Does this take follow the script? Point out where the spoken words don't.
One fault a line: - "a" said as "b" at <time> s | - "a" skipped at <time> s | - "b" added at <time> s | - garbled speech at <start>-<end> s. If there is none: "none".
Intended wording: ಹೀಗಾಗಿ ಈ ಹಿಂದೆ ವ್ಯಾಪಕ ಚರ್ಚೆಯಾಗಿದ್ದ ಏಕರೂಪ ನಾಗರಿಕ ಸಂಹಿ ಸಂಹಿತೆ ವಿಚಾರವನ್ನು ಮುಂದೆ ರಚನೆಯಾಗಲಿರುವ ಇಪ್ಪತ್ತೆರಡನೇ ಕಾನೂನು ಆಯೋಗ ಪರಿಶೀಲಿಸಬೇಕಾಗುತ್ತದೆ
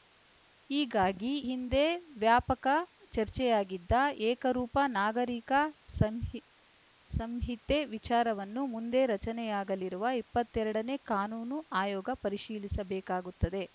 - "ಈ" skipped at 1.3 s